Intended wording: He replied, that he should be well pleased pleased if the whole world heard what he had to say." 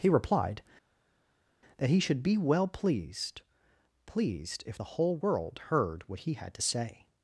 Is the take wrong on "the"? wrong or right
right